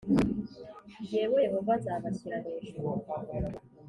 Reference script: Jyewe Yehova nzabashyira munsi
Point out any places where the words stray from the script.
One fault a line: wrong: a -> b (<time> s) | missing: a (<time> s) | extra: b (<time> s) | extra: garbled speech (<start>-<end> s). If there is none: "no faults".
wrong: munsi -> hejuru (2.4 s)